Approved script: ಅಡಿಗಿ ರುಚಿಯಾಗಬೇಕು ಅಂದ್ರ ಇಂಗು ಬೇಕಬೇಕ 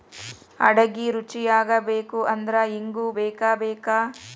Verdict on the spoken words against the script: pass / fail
pass